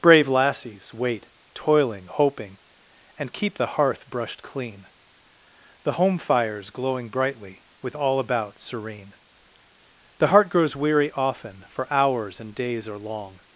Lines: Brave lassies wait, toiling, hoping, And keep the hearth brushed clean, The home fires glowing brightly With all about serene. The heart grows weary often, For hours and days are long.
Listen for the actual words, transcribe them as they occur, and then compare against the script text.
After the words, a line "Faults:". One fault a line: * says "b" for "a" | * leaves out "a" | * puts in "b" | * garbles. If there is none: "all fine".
Brave lassies wait, toiling, hoping, And keep the hearth brushed clean, The home fires glowing brightly With all about serene. The heart grows weary often, For hours and days are long.
Faults:
all fine